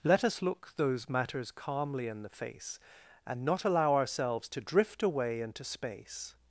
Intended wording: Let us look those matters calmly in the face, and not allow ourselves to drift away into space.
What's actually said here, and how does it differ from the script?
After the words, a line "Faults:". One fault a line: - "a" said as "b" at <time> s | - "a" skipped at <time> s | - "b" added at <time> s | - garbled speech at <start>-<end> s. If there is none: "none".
Let us look those matters calmly in the face, and not allow ourselves to drift away into space.
Faults:
none